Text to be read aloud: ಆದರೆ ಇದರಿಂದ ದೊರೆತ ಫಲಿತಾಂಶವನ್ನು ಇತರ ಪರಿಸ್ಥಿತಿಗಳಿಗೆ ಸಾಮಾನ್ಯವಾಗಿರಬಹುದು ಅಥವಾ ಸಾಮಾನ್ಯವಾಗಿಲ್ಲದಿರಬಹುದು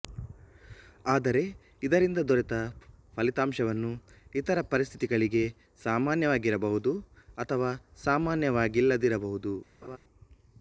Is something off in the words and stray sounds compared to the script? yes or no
yes